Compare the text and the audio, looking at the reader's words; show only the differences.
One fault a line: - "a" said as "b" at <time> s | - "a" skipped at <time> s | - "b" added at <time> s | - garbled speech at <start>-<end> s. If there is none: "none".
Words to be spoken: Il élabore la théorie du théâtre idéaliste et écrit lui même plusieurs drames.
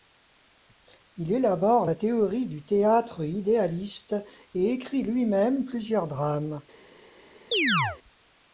none